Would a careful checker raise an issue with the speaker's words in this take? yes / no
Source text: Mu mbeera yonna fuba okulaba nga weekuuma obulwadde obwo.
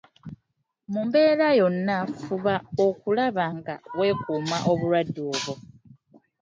no